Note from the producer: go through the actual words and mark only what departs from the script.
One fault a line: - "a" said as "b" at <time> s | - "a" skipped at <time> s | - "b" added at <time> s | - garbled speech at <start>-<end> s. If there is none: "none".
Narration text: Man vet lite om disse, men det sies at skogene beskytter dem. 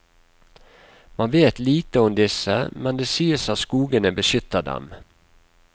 none